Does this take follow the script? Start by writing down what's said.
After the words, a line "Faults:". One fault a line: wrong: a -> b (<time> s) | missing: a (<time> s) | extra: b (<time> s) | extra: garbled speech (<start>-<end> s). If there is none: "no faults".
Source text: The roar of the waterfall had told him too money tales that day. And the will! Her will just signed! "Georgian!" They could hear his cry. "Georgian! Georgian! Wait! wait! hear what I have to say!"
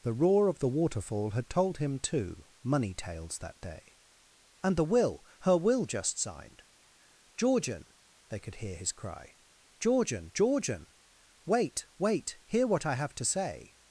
The roar of the waterfall had told him too money tales that day. And the will! Her will just signed! "Georgian!" They could hear his cry. "Georgian! Georgian! Wait! wait! hear what I have to say!"
Faults:
no faults